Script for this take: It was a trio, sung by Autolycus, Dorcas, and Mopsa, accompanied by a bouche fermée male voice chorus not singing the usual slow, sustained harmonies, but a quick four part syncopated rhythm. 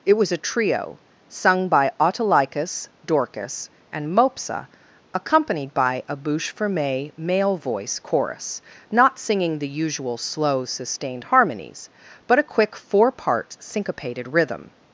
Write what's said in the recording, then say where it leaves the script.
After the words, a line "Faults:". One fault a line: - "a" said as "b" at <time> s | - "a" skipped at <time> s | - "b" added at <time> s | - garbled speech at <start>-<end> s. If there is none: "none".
It was a trio, sung by Autolycus, Dorcas, and Mopsa, accompanied by a bouche fermée male voice chorus not singing the usual slow, sustained harmonies, but a quick four part syncopated rhythm.
Faults:
none